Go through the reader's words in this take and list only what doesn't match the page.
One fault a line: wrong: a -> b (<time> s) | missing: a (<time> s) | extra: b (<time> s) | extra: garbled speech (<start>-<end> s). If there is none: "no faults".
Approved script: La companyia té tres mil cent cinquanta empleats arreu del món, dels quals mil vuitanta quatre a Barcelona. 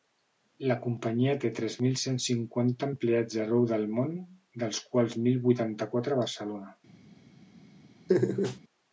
no faults